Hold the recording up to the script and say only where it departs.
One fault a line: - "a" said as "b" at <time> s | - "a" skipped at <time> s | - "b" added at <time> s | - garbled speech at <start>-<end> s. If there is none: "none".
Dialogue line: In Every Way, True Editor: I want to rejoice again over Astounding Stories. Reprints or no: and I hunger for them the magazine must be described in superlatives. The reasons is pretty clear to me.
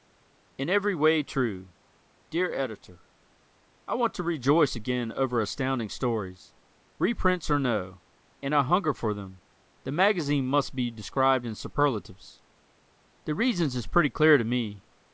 - "Dear" added at 2.3 s